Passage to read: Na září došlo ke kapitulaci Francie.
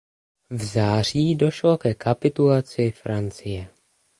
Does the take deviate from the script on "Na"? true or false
true